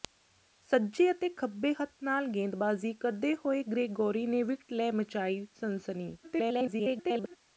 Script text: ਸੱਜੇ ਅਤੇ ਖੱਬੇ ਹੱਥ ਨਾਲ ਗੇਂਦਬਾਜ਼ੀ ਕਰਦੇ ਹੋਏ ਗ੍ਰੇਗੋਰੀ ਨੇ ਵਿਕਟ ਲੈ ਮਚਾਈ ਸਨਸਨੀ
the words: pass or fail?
fail